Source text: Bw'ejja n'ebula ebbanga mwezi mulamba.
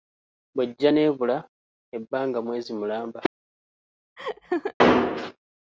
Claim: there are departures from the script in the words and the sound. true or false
true